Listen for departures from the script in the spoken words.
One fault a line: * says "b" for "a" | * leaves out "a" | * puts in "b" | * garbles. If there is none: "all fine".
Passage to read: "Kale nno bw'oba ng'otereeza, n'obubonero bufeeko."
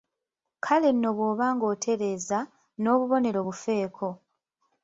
all fine